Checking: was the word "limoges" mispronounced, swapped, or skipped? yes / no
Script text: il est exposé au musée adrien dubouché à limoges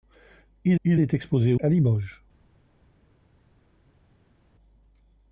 no